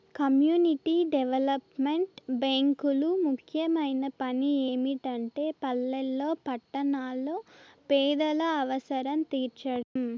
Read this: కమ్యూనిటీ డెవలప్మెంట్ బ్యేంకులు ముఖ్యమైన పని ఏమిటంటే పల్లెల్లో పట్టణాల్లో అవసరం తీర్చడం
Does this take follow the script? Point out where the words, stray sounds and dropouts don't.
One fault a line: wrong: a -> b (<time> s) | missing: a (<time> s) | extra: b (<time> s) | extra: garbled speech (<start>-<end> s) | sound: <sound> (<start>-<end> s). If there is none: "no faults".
extra: పేదల (7.9 s)
sound: dropout (9.8-10.0 s)